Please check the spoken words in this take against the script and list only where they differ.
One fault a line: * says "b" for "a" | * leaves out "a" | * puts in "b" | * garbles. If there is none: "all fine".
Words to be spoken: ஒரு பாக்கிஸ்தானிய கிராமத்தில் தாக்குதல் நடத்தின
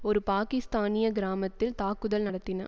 all fine